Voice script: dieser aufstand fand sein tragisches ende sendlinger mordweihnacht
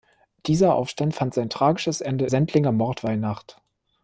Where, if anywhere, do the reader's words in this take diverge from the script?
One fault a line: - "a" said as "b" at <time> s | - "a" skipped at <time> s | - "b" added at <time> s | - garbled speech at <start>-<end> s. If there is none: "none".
none